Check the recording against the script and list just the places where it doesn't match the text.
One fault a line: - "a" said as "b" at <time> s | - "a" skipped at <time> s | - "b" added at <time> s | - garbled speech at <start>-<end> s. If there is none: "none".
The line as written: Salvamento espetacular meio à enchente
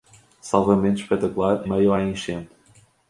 none